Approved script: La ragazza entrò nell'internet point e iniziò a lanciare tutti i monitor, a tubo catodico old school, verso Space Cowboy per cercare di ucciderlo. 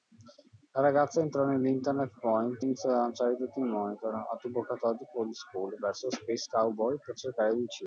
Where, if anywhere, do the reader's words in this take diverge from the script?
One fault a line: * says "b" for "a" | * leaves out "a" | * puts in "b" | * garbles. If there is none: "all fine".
* leaves out "e"